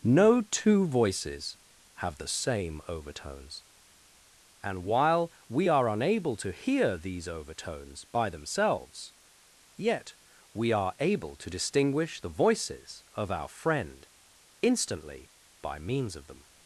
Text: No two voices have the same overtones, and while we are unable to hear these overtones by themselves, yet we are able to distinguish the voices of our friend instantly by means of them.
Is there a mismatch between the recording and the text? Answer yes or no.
no